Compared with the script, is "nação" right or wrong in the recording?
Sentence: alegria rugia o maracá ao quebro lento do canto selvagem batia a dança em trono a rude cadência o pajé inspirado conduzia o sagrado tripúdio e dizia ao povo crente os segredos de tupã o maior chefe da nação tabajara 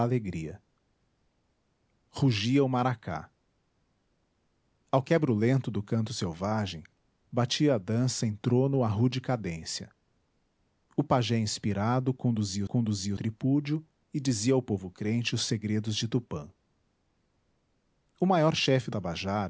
wrong